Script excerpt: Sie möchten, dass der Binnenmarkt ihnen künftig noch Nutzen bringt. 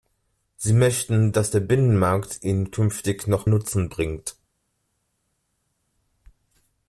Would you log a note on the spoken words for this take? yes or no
no